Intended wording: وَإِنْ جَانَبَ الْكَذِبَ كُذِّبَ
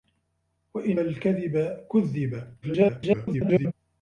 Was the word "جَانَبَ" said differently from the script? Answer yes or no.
yes